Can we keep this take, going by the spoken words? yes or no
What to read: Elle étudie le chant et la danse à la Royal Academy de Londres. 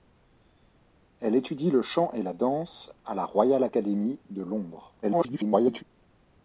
no